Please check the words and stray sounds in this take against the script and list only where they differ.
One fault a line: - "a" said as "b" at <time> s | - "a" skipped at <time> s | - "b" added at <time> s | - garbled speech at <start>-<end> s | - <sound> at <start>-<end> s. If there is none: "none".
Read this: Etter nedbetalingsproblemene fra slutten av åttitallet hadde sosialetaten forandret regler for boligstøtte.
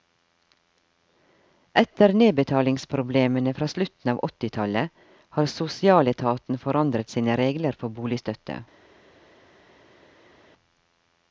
- "hadde" said as "har" at 5.4 s
- "sine" added at 7.2 s